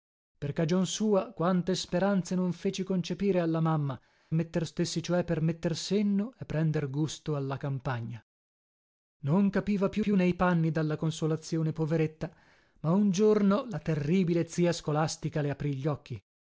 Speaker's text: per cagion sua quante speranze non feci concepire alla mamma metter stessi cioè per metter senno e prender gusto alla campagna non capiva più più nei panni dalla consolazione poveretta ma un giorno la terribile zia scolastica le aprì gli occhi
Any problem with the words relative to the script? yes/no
no